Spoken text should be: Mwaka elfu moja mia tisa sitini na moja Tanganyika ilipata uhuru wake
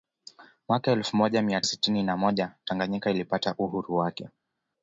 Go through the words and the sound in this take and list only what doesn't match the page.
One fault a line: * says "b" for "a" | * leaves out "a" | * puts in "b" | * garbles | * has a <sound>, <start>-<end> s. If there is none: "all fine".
* leaves out "tisa"